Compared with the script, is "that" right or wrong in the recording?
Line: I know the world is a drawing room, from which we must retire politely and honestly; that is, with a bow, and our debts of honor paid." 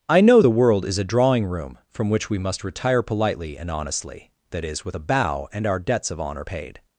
right